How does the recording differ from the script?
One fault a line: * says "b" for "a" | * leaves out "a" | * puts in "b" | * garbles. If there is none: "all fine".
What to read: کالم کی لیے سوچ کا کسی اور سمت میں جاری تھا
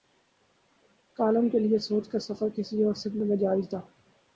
* says "کے" for "کی"
* puts in "سفر"